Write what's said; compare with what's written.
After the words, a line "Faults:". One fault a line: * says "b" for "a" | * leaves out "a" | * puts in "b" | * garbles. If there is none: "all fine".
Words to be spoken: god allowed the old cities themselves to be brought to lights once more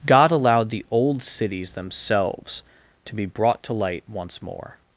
god allowed the old cities themselves to be brought to light once more
Faults:
* says "light" for "lights"